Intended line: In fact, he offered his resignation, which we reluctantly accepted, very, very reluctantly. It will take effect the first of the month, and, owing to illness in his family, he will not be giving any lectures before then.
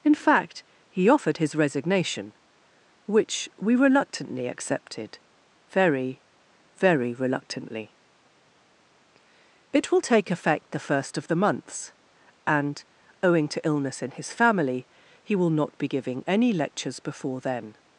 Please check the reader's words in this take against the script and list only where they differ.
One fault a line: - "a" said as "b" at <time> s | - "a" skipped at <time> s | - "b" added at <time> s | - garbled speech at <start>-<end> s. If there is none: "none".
- "month" said as "months" at 11.3 s